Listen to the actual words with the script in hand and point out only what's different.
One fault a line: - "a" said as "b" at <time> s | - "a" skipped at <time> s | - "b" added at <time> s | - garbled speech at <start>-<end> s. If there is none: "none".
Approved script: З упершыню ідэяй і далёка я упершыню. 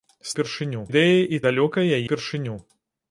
none